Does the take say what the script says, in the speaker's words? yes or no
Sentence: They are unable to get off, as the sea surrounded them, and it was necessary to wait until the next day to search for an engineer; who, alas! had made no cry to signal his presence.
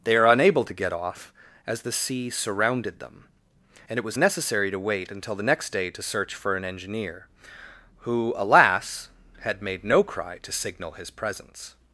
yes